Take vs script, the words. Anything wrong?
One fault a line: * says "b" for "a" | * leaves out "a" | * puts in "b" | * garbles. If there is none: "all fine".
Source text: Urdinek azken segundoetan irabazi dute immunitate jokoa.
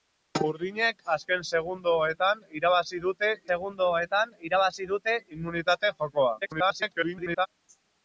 * puts in "segundoetan irabazi dute"
* garbles